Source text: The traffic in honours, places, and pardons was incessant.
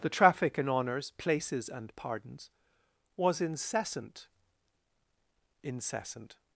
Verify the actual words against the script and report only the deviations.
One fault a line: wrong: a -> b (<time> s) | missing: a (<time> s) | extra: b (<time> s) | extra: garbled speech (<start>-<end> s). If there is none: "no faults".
extra: incessant (5.6 s)